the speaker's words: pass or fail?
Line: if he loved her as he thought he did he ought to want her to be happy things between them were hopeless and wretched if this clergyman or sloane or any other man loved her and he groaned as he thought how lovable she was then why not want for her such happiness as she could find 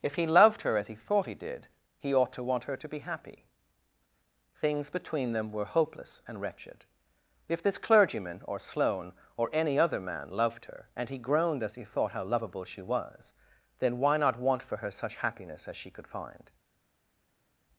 pass